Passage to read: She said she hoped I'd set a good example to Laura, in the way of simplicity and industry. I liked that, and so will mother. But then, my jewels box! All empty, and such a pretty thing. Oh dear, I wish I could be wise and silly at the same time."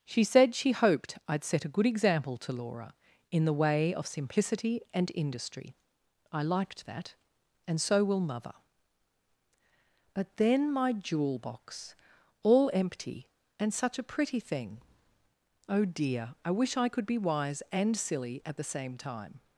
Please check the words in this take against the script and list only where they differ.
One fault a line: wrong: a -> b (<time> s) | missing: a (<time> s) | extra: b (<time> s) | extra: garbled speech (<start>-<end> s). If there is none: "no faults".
wrong: jewels -> jewel (10.9 s)